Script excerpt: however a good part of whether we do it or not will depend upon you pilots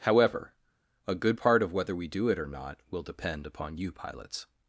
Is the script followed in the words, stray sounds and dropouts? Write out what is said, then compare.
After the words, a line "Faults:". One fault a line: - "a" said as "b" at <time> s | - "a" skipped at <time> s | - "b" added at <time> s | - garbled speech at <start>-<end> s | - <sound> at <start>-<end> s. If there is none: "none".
however a good part of whether we do it or not will depend upon you pilots
Faults:
none